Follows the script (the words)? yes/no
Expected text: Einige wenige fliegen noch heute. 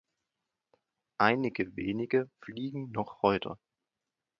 yes